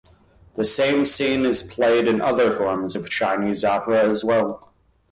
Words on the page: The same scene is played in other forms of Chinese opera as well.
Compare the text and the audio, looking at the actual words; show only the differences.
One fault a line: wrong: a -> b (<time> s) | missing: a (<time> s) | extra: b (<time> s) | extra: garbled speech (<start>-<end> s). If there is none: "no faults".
no faults